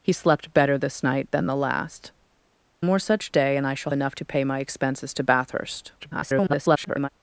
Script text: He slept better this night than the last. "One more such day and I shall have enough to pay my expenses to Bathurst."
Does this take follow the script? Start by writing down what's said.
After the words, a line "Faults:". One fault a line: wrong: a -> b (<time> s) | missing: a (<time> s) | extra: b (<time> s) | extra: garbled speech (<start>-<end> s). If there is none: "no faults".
He slept better this night than the last. "More such day and I shall enough to pay my expenses to Bathurst." [garbled]
Faults:
missing: One (2.1 s)
missing: have (3.9 s)
extra: garbled speech (6.0-7.1 s)